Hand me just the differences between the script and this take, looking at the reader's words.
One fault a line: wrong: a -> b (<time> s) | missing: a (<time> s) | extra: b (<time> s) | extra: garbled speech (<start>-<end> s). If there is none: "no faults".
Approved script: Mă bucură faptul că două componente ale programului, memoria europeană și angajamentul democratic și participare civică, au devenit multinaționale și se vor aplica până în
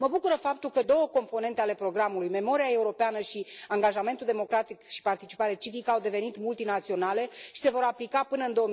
no faults